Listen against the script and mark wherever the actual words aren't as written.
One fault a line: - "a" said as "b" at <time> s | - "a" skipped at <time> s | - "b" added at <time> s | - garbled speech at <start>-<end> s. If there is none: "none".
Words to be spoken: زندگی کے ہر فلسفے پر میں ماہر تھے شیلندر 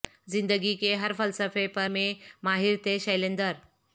none